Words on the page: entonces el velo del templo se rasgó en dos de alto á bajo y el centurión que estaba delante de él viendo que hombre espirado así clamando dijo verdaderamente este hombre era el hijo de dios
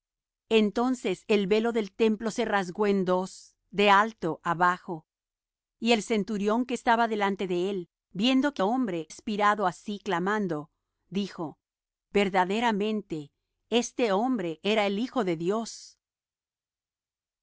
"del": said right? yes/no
yes